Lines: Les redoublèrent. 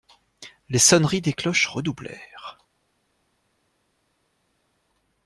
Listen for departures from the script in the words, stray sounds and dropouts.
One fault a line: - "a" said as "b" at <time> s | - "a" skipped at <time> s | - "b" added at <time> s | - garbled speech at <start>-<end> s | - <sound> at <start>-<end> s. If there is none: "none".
- "sonneries des cloches" added at 0.8 s